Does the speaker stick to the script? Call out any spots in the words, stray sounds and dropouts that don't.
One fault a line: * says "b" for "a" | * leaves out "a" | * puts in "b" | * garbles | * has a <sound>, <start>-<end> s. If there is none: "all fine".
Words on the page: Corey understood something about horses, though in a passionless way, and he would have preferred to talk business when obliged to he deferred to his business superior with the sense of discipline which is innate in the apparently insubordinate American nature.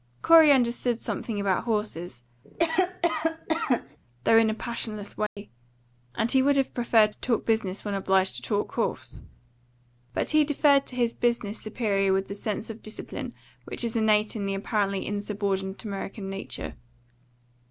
* has a cough, 2.4-4.0 s
* has a dropout, 5.3-5.4 s
* puts in "talk horse But"